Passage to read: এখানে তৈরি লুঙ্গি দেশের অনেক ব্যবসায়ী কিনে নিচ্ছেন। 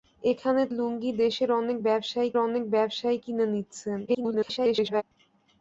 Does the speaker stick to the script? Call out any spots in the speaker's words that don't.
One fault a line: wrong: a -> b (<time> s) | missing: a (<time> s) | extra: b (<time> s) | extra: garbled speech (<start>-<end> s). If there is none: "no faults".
missing: তৈরি (0.6 s)
extra: অনেক ব্যবসায়ী (2.4 s)
extra: garbled speech (4.1-5.0 s)